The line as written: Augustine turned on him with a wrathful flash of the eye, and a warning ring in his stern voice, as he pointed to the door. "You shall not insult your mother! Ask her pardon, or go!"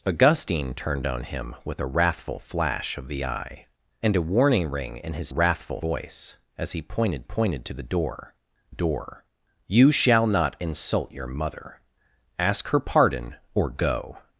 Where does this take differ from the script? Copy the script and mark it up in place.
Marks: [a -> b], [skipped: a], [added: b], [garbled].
Augustine turned on him with a wrathful flash of the eye, and a warning ring in his [stern -> wrathful] voice, as he pointed [added: pointed] to the door. [added: door] "You shall not insult your mother! Ask her pardon, or go!"